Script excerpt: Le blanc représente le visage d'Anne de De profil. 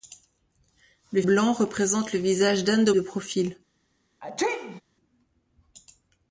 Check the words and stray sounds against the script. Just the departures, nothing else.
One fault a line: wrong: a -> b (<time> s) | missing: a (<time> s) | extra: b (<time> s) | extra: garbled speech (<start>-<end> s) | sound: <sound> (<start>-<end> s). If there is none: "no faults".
sound: sneeze (4.2-4.8 s)